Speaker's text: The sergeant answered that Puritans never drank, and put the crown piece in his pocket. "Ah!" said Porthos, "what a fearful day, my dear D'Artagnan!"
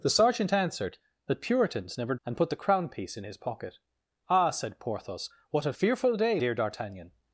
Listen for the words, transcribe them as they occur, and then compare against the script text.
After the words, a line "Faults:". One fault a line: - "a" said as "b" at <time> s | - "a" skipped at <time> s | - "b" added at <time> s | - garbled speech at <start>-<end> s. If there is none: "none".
The sergeant answered that Puritans never and put the crown piece in his pocket. "Ah!" said Porthos, "what a fearful day, dear D'Artagnan!"
Faults:
- "drank" skipped at 2.1 s
- "my" skipped at 6.4 s